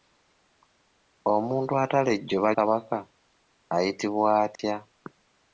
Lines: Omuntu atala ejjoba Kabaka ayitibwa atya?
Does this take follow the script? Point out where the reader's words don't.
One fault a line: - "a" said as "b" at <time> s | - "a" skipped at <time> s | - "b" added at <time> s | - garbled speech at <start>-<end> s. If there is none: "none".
none